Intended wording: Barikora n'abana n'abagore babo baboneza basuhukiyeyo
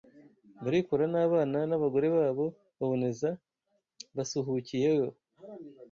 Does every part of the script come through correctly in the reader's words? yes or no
yes